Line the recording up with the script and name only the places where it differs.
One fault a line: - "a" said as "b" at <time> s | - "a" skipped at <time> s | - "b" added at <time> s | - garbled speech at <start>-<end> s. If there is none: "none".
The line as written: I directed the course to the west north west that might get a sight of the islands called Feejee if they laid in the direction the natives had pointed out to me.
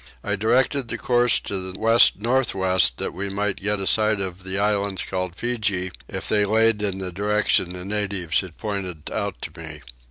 - "we" added at 3.1 s